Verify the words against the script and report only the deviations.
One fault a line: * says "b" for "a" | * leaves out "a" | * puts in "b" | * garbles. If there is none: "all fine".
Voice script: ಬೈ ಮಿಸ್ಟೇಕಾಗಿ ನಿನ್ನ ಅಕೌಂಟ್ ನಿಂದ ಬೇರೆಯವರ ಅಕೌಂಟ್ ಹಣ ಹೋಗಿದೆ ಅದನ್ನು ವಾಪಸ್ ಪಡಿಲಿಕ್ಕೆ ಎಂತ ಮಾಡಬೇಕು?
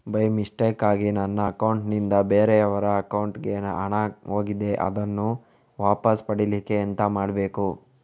* says "ನನ್ನ" for "ನಿನ್ನ"
* puts in "ಗೆ"